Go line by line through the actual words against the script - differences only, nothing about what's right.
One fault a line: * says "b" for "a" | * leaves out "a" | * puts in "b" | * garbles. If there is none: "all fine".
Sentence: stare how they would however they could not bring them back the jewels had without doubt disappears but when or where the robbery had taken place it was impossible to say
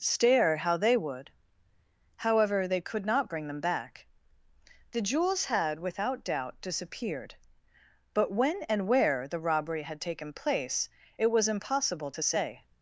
* says "disappeared" for "disappears"
* says "and" for "or"